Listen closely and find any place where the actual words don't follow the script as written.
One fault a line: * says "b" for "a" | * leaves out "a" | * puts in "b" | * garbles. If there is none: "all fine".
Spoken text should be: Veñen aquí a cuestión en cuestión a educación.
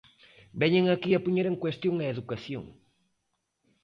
* says "poñer" for "cuestión"